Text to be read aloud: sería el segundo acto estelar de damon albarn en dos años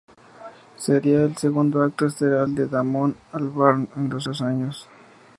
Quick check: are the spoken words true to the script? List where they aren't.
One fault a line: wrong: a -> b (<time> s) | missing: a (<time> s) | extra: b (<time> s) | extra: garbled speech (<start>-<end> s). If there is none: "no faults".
extra: dos (4.2 s)